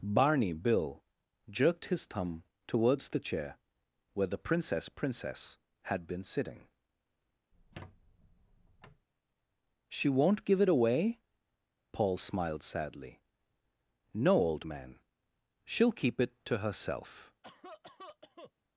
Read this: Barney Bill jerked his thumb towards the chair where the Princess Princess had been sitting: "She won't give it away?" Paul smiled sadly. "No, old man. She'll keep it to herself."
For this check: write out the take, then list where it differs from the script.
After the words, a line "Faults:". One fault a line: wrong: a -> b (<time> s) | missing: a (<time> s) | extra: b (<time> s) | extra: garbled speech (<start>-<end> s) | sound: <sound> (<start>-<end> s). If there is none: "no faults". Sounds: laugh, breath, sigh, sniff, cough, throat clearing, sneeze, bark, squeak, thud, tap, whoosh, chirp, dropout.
Barney Bill jerked his thumb towards the chair where the Princess Princess had been sitting: "She won't give it away?" Paul smiled sadly. "No, old man. She'll keep it to herself."
Faults:
sound: squeak (7.5-9.1 s)
sound: cough (17.4-18.5 s)